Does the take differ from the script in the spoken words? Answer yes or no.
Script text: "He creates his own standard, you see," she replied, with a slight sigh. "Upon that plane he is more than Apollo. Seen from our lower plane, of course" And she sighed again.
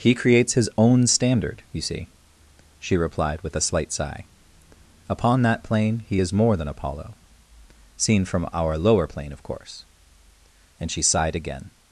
no